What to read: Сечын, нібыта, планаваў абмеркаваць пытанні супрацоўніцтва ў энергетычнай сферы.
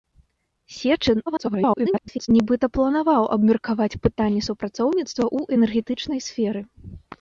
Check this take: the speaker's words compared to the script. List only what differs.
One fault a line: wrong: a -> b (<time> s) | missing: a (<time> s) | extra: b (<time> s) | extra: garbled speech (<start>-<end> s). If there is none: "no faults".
extra: garbled speech (1.3-2.3 s)